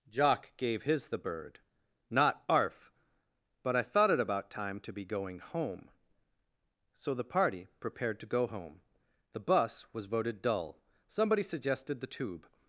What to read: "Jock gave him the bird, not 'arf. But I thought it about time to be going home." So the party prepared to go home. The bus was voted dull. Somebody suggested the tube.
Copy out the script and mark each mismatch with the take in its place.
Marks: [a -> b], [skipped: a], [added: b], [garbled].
"Jock gave [him -> his] the bird, not 'arf. But I thought it about time to be going home." So the party prepared to go home. The bus was voted dull. Somebody suggested the tube.